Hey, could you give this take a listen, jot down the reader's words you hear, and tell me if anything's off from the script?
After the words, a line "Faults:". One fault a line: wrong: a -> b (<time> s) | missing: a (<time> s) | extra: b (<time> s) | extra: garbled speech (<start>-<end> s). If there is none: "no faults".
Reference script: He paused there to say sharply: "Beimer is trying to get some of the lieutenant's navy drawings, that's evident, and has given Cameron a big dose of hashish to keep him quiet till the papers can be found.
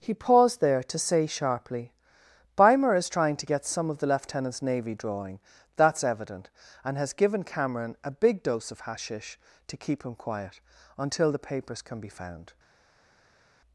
He paused there to say sharply: "Beimer is trying to get some of the lieutenant's navy drawing, that's evident, and has given Cameron a big dose of hashish to keep him quiet until the papers can be found.
Faults:
wrong: drawings -> drawing (4.9 s)
wrong: till -> until (11.0 s)